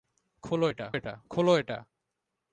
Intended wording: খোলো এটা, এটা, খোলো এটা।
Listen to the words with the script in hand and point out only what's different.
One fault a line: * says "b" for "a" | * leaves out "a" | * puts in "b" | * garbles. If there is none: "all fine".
all fine